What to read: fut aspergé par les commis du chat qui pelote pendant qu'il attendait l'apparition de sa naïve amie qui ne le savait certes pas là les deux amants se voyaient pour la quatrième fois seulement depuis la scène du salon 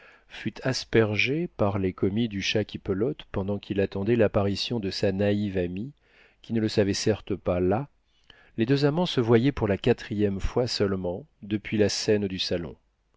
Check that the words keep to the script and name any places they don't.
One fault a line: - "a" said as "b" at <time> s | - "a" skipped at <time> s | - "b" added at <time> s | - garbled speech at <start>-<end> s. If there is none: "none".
none